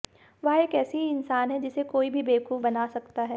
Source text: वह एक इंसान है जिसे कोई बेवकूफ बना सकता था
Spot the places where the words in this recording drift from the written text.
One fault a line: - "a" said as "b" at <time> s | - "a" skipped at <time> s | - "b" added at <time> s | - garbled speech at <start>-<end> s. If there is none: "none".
- "ऐसी" added at 0.8 s
- "भी" added at 2.1 s
- "था" said as "है" at 3.2 s